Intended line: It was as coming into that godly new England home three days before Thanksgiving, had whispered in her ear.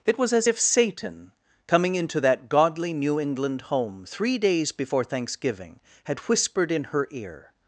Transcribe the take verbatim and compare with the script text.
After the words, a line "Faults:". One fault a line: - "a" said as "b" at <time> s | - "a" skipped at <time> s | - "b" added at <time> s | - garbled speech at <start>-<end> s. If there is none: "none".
It was as if Satan, coming into that godly new England home three days before Thanksgiving, had whispered in her ear.
Faults:
- "if Satan" added at 0.4 s